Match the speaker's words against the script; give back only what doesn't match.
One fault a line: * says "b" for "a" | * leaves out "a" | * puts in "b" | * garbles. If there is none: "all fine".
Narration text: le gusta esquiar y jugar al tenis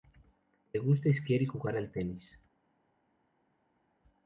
all fine